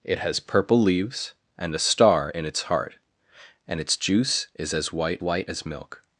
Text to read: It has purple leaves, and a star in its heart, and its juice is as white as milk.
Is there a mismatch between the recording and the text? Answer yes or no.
yes